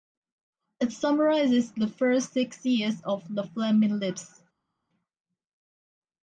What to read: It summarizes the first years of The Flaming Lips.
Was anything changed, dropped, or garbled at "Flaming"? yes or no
no